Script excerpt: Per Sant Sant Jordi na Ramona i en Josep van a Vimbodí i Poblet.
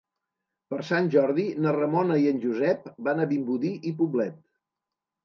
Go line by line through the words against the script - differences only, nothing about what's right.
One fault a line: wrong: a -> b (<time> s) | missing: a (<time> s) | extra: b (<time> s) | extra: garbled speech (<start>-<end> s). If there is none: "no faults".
missing: Sant (1.1 s)